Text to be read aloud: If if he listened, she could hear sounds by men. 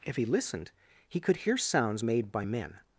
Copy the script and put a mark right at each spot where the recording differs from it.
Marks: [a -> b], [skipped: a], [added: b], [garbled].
If [skipped: if] he listened, [she -> he] could hear sounds [added: made] by men.